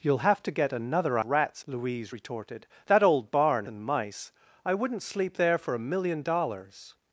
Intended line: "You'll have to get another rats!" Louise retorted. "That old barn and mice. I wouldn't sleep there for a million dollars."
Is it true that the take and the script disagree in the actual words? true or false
false